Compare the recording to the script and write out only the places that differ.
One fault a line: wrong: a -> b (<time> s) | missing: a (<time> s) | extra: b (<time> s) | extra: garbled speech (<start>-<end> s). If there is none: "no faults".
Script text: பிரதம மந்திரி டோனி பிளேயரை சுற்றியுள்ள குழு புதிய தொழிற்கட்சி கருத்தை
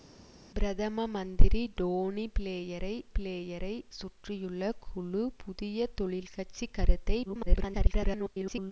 extra: பிளேயரை (3.2 s)
extra: garbled speech (7.2-8.7 s)